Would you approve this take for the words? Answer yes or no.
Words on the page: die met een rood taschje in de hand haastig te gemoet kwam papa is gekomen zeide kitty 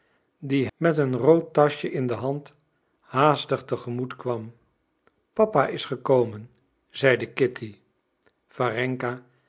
yes